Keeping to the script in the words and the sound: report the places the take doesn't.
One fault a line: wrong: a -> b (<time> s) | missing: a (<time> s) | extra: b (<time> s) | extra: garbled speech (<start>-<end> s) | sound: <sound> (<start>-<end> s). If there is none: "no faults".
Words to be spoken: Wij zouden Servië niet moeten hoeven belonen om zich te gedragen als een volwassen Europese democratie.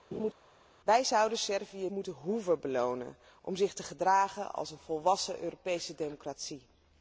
sound: laugh (0.1-0.3 s)
missing: niet (1.9 s)